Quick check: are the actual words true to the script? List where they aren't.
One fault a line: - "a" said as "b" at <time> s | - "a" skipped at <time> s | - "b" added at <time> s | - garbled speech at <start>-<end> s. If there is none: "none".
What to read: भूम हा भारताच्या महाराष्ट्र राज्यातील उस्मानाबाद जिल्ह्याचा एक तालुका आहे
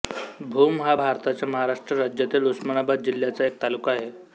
none